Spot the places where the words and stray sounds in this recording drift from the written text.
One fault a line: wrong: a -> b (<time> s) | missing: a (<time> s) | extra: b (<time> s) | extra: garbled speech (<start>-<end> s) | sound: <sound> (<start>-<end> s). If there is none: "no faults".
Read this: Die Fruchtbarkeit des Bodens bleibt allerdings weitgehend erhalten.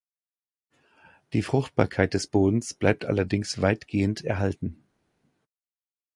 no faults